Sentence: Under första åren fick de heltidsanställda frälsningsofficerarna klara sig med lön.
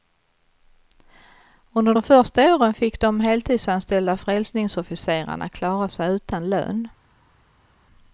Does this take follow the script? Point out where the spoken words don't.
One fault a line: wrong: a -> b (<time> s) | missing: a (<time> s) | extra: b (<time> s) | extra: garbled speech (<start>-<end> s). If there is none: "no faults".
extra: de (1.9 s)
wrong: med -> utan (6.1 s)